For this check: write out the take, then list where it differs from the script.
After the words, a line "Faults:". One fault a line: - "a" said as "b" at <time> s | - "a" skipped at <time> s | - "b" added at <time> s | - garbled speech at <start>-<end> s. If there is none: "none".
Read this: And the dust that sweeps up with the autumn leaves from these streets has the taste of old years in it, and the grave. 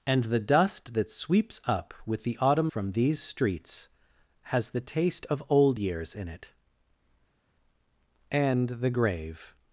And the dust that sweeps up with the autumn from these streets has the taste of old years in it, and the grave.
Faults:
- "leaves" skipped at 2.7 s